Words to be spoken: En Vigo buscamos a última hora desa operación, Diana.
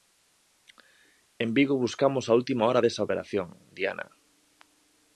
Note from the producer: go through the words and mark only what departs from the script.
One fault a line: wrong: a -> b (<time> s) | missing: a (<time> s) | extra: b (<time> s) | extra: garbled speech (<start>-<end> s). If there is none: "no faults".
no faults